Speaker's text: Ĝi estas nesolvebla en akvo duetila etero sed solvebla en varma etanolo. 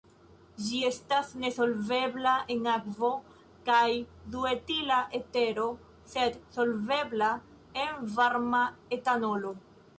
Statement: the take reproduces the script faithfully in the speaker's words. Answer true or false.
false